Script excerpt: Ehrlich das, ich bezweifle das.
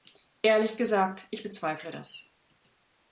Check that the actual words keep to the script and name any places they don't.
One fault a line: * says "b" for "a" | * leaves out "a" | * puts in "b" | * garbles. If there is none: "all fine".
* says "gesagt" for "das"